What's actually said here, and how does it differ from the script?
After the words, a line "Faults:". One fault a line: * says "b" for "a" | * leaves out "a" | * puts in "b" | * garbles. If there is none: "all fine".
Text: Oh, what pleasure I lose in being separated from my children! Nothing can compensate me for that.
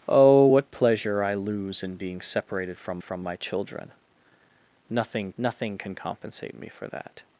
Oh, what pleasure I lose in being separated from from my children! Nothing nothing can compensate me for that.
Faults:
* puts in "from"
* puts in "nothing"